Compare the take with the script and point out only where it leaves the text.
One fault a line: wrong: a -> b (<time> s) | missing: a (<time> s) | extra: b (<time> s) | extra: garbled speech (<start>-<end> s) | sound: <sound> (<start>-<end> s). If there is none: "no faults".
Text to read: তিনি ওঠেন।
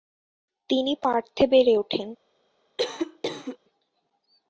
extra: পার্থে বেড়ে (1.0 s)
sound: cough (2.8-3.6 s)